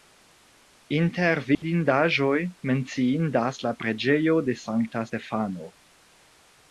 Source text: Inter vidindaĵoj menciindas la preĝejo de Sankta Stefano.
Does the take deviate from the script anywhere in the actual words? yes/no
no